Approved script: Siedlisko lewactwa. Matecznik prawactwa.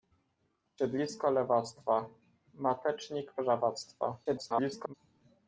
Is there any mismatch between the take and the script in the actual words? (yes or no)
yes